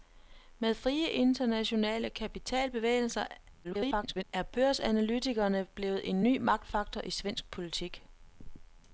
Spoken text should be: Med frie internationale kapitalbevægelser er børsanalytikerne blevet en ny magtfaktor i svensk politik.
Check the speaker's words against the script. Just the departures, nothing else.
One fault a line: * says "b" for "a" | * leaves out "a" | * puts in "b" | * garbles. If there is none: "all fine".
* garbles